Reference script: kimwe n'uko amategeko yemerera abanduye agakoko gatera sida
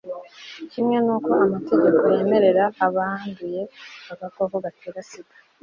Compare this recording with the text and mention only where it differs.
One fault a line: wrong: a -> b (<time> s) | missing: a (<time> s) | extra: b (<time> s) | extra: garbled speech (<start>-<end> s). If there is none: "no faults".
no faults